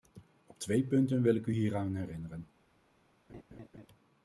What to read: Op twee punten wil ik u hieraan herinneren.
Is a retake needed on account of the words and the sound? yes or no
yes